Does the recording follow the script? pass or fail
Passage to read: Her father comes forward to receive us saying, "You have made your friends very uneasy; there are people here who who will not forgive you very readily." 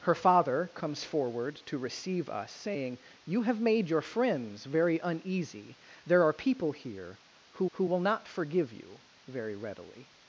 pass